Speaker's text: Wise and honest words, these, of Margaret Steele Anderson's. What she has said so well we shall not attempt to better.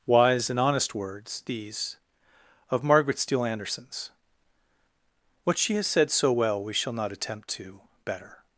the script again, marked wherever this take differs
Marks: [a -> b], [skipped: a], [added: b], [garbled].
Wise and honest words, these, of Margaret Steele Anderson's. What she has said so well we shall not attempt to better.